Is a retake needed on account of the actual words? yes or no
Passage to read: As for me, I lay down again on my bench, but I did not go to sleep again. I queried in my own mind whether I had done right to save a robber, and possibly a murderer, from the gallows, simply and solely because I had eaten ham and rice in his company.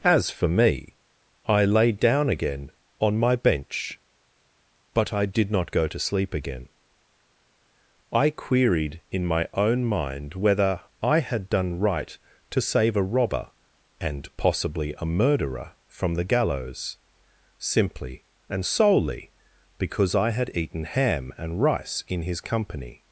no